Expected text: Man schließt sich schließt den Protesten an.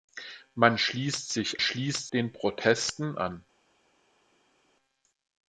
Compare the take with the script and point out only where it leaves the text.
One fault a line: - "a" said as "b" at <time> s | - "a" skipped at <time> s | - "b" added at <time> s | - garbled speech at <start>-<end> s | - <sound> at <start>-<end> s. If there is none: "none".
none